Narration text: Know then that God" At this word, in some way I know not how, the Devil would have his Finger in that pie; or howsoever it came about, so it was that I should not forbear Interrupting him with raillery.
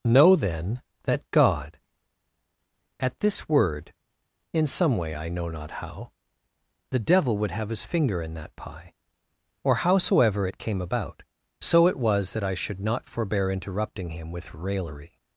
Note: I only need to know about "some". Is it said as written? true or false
true